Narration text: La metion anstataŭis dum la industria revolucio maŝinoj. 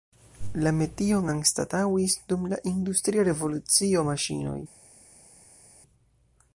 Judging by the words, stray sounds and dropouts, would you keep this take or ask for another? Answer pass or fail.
pass